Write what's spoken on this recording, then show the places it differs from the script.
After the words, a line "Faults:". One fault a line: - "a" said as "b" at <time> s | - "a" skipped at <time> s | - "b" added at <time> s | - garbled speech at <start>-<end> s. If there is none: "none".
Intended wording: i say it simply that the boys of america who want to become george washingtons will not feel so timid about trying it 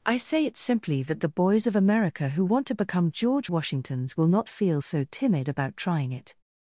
i say it simply that the boys of america who want to become george washingtons will not feel so timid about trying it
Faults:
none